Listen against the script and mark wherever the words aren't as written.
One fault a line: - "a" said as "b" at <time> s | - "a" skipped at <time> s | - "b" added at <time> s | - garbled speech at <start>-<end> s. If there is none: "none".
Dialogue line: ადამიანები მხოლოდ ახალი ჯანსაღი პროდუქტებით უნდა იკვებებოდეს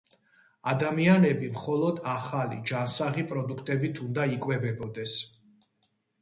none